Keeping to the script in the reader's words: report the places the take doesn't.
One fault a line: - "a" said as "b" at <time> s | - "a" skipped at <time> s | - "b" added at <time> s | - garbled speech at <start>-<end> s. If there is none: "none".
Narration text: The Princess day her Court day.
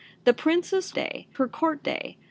none